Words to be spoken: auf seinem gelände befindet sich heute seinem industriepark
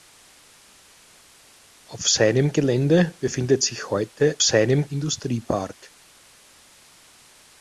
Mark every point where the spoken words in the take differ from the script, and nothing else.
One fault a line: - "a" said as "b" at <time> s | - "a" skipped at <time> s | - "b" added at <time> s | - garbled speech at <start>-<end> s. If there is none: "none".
none